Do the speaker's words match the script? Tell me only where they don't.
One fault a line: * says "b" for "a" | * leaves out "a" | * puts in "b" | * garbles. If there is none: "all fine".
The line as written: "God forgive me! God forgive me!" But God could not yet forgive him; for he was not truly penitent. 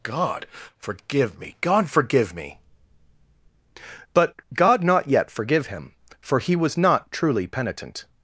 * leaves out "could"